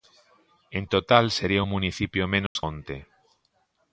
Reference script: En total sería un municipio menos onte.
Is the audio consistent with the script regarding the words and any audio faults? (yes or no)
no